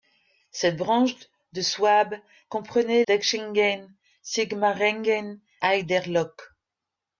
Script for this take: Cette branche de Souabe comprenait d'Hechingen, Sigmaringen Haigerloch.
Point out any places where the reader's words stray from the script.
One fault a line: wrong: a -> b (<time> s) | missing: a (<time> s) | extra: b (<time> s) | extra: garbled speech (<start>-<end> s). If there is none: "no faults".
no faults